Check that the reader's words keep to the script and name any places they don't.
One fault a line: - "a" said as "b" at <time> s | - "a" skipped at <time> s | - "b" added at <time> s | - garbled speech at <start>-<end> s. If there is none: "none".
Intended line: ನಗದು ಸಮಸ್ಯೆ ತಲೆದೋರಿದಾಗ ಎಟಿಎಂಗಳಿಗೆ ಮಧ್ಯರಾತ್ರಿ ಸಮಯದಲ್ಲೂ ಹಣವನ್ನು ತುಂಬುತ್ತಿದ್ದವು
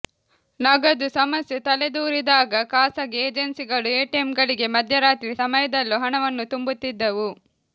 - "ಖಾಸಗಿ ಏಜೆನ್ಸಿಗಳು" added at 2.6 s